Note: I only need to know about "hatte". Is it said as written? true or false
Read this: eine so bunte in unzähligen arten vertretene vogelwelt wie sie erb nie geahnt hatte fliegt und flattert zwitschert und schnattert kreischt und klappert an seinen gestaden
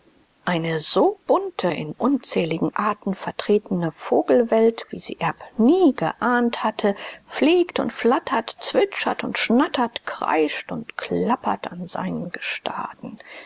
true